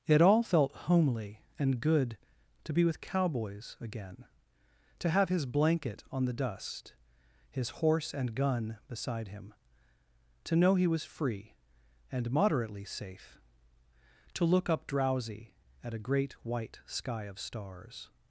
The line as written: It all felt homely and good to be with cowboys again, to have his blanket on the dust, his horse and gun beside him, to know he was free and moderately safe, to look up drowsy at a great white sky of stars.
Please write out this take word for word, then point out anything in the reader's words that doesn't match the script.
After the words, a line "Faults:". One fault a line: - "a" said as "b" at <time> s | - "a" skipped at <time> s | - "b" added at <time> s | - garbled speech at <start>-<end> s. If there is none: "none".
It all felt homely and good to be with cowboys again, to have his blanket on the dust, his horse and gun beside him, to know he was free and moderately safe, to look up drowsy at a great white sky of stars.
Faults:
none